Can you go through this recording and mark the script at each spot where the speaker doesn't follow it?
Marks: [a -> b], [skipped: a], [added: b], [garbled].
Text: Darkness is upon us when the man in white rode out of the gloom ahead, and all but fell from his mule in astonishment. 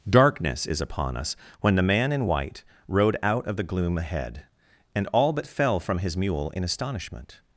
Darkness is upon us when the man in white rode out of the gloom ahead, and all but fell from his mule in astonishment.